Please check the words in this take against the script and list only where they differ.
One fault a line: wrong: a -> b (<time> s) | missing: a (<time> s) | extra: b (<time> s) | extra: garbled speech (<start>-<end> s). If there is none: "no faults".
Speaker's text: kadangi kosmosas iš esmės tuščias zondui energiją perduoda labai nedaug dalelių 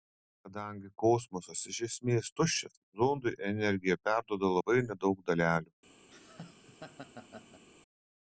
no faults